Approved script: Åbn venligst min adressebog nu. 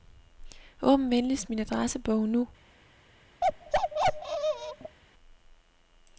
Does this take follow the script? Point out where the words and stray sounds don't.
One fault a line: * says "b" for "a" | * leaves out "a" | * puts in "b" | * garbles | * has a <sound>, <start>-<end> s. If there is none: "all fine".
* has a bark, 3.4-5.0 s